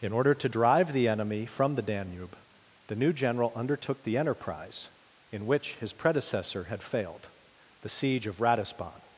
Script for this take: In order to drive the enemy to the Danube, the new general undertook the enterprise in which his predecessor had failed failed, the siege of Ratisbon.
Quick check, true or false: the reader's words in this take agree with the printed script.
false